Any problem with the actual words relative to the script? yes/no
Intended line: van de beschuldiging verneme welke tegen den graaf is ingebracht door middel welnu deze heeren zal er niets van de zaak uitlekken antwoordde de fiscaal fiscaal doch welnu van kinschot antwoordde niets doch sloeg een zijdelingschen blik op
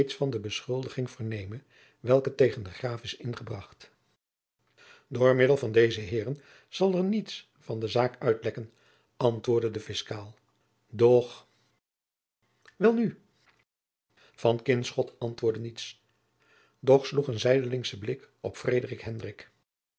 yes